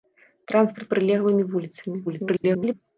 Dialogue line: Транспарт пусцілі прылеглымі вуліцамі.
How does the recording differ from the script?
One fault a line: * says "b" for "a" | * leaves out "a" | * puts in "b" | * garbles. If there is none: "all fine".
* leaves out "пусцілі"
* garbles